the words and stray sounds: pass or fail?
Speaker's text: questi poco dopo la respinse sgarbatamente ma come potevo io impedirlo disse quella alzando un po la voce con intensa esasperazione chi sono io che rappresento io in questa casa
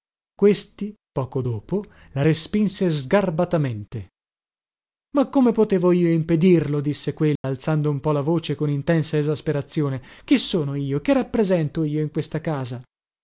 fail